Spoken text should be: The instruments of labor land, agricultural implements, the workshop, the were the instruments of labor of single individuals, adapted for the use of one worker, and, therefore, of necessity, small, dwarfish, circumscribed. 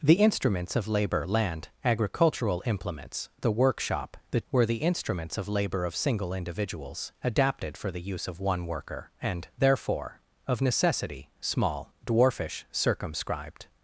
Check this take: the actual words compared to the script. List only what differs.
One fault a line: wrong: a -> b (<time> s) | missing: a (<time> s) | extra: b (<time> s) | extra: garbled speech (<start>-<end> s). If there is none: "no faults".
no faults